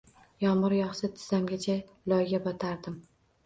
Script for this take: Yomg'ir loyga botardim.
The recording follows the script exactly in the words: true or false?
false